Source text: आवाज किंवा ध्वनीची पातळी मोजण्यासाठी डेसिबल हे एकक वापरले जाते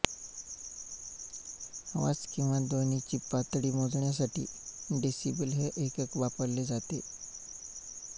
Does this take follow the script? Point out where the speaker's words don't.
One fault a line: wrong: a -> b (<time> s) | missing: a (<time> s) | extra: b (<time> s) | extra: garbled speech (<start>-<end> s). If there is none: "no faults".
no faults